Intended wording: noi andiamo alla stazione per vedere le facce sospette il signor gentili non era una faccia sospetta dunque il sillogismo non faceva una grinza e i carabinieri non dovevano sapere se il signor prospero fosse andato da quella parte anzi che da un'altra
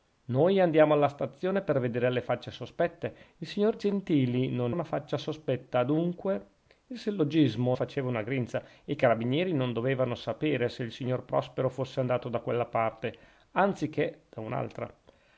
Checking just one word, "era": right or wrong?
wrong